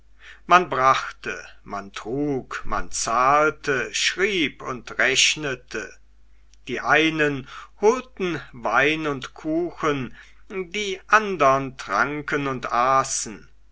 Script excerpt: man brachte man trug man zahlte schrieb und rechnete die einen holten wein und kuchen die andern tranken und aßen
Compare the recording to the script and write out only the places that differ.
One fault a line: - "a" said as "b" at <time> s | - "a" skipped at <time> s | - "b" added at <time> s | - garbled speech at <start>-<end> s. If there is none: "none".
none